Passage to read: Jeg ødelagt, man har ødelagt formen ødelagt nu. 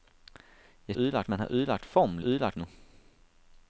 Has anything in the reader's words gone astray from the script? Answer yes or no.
no